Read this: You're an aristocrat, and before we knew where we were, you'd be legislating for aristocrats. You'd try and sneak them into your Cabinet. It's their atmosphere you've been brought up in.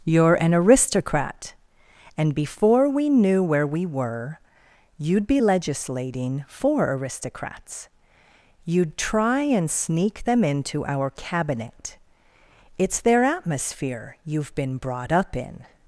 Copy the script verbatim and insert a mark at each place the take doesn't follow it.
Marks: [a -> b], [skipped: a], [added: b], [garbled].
You're an aristocrat, and before we knew where we were, you'd be legislating for aristocrats. You'd try and sneak them into [your -> our] Cabinet. It's their atmosphere you've been brought up in.